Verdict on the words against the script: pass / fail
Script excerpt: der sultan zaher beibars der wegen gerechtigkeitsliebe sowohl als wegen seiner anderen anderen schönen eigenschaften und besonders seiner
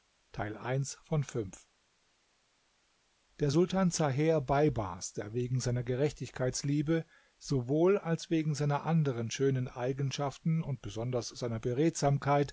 fail